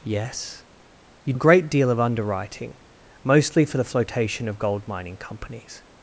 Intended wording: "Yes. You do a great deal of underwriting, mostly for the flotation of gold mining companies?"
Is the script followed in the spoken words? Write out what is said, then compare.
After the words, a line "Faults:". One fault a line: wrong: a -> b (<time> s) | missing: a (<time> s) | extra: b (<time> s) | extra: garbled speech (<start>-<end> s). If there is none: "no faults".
"Yes. You a great deal of underwriting, mostly for the flotation of gold mining companies?"
Faults:
missing: do (1.3 s)